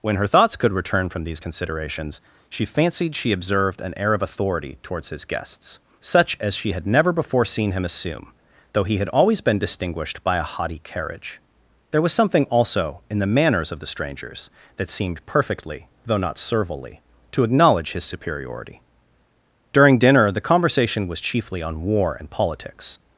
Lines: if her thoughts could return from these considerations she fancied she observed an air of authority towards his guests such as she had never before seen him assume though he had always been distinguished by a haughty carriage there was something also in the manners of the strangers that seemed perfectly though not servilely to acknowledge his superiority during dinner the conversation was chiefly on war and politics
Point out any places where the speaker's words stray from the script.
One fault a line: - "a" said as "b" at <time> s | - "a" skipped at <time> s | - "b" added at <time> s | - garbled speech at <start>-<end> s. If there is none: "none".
- "if" said as "when" at 0.0 s